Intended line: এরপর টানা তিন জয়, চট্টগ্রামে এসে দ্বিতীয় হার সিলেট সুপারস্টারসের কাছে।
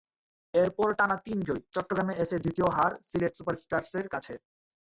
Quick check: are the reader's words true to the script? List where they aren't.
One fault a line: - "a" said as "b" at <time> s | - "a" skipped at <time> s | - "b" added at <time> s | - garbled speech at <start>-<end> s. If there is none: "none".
none